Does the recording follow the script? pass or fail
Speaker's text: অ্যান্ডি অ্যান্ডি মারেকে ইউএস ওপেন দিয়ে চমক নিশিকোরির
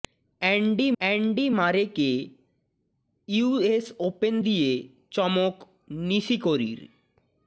pass